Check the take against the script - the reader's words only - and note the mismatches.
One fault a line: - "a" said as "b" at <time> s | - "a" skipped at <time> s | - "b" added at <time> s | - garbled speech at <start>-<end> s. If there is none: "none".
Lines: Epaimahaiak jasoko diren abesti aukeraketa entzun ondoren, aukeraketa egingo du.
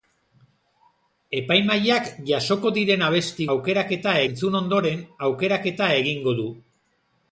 none